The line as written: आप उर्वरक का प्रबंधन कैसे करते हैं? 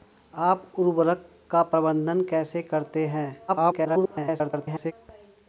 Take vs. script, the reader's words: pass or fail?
fail